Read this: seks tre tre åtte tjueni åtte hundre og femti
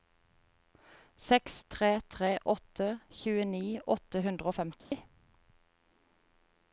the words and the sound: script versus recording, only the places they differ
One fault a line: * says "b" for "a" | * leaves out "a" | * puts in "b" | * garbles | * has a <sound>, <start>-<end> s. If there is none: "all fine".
* has a dropout, 4.8-4.9 s